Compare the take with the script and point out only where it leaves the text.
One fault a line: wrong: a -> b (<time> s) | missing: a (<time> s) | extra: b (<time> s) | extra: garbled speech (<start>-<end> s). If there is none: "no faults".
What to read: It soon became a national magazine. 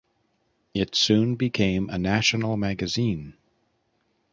no faults